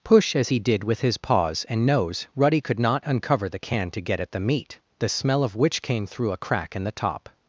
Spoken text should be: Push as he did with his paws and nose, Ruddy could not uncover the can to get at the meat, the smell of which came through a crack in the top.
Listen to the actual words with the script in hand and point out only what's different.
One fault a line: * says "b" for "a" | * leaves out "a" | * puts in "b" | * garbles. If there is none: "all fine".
all fine